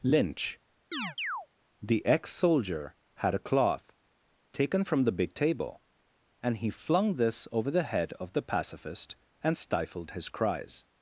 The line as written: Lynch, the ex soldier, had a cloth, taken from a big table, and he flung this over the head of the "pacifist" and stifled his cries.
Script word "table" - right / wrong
right